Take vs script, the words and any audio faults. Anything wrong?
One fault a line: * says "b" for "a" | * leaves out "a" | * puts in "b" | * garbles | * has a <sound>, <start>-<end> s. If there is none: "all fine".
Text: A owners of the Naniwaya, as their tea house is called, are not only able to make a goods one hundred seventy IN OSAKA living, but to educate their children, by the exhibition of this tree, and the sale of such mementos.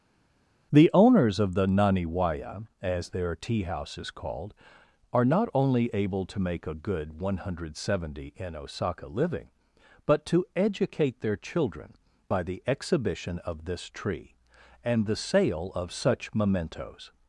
* says "The" for "A"
* says "good" for "goods"